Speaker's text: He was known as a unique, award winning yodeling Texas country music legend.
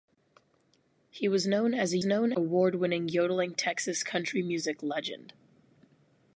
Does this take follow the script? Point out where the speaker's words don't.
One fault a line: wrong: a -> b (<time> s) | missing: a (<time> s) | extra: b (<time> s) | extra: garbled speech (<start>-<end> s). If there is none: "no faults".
wrong: unique -> known (2.0 s)